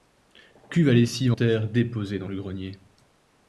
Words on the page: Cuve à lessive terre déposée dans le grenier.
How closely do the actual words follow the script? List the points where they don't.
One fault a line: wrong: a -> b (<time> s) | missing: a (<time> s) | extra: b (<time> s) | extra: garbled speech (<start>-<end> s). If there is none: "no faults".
no faults